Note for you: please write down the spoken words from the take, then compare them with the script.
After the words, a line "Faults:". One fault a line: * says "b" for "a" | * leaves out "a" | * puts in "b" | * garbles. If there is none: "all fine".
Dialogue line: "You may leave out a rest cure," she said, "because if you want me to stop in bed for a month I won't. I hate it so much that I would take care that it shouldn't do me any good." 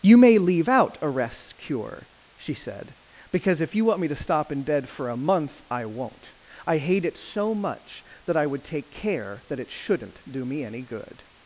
"You may leave out a rest cure," she said, "because if you want me to stop in bed for a month I won't. I hate it so much that I would take care that it shouldn't do me any good."
Faults:
all fine